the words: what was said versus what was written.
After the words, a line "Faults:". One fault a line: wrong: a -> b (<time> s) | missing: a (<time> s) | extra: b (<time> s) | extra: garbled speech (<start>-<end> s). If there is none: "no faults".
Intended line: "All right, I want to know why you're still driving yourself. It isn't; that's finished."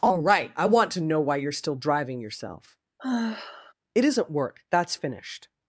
"All right, I want to know why you're still driving yourself. It isn't work; that's finished."
Faults:
extra: work (4.3 s)